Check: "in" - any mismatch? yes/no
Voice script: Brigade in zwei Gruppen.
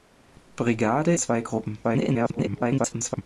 yes